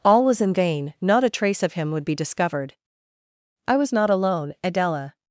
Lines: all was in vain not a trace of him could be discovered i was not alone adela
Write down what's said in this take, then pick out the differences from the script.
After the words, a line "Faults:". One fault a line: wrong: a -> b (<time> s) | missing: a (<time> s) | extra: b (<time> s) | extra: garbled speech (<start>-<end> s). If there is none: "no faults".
all was in vain not a trace of him would be discovered i was not alone adela
Faults:
wrong: could -> would (1.9 s)